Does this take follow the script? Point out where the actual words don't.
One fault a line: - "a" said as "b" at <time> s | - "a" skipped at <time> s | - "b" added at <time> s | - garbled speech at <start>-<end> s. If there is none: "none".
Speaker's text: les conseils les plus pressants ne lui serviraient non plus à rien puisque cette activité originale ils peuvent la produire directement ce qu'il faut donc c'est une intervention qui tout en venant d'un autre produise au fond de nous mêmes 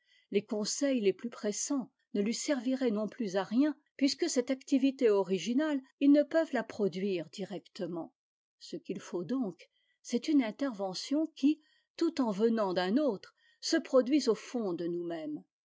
- "ne" added at 6.1 s
- "se" added at 13.6 s